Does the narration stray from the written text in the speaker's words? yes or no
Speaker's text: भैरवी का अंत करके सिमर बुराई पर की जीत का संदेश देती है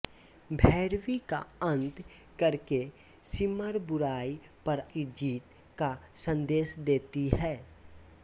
no